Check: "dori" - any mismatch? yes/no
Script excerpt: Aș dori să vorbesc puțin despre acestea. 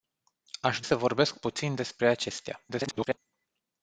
yes